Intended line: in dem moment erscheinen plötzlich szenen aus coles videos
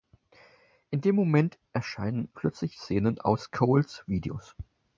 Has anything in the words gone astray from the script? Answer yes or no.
no